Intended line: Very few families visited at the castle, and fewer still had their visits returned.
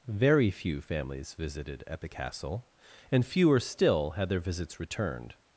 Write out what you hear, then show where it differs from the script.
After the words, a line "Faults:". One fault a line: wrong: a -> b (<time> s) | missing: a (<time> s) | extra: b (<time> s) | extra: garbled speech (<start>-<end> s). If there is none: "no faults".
Very few families visited at the castle, and fewer still had their visits returned.
Faults:
no faults